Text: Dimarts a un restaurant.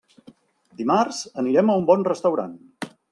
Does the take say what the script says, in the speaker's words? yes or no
no